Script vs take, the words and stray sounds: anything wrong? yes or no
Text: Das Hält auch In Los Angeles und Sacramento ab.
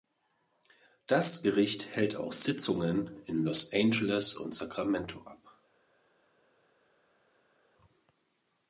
yes